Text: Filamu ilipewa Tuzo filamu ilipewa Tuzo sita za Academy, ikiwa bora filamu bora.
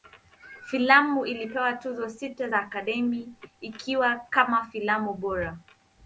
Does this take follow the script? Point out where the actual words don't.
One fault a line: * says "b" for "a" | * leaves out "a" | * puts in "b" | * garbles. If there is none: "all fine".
* leaves out "filamu ilipewa Tuzo"
* says "kama" for "bora"